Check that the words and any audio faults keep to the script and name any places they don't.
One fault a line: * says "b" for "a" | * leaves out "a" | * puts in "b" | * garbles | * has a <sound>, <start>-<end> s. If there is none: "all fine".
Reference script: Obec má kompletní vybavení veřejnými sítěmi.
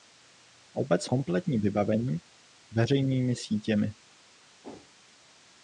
* leaves out "má"
* has a whoosh, 4.6-4.9 s